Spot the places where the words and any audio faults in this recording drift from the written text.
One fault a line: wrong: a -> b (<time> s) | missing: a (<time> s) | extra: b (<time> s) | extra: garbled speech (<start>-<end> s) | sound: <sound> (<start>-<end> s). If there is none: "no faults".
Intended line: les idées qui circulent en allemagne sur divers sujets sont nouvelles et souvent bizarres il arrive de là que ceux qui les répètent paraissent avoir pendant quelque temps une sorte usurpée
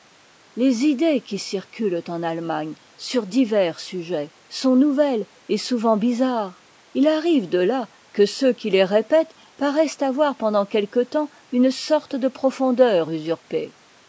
extra: de profondeur (12.1 s)